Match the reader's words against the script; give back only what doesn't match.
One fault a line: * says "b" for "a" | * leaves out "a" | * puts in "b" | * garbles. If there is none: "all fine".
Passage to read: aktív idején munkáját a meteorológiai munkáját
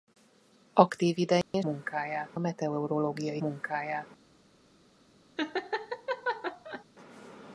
all fine